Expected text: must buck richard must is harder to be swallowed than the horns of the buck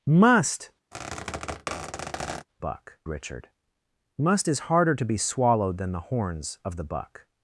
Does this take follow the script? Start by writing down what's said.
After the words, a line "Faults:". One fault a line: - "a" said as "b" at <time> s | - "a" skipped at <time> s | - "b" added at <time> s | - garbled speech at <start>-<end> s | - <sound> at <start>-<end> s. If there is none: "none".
must buck richard must is harder to be swallowed than the horns of the buck
Faults:
- squeak at 0.9-2.5 s